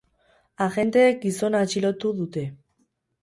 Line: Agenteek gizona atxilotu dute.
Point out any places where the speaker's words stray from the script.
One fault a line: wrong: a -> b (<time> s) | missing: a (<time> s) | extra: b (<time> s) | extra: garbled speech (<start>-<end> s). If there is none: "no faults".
no faults